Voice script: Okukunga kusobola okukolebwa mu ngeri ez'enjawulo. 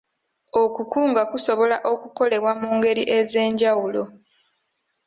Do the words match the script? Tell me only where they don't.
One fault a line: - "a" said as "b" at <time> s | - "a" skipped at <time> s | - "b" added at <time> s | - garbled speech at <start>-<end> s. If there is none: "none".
none